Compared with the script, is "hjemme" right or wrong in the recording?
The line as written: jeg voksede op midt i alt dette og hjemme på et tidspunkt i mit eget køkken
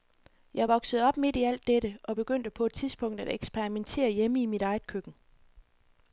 wrong